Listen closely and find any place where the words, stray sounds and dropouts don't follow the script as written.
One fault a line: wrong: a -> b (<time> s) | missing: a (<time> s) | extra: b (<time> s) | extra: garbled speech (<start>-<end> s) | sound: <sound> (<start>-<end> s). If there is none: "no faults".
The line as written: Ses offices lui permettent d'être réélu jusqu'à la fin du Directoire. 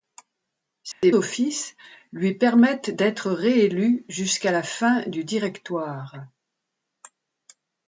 sound: dropout (0.9-1.0 s)